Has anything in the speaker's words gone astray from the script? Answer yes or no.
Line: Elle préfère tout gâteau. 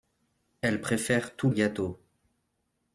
no